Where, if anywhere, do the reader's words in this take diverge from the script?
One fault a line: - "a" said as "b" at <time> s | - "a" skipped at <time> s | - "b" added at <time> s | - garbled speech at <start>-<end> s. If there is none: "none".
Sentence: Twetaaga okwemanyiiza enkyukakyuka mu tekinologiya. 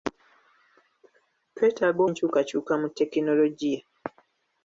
- "okwemanyiiza" skipped at 2.0 s